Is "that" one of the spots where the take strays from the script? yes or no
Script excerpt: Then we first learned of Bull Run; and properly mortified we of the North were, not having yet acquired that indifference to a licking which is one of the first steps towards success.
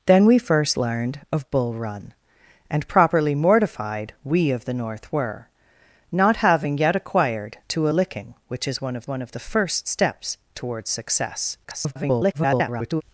yes